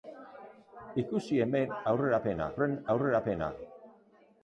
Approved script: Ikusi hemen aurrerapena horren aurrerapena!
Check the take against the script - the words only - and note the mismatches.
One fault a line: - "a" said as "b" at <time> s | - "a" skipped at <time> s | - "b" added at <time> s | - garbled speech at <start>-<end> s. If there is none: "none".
none